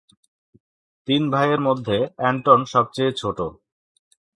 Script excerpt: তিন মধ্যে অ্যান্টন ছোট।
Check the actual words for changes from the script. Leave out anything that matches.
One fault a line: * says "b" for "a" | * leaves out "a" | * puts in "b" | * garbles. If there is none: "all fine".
* puts in "ভাইয়ের"
* puts in "সবচেয়ে"